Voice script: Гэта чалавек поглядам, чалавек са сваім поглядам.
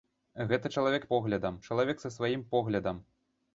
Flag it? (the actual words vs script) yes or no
no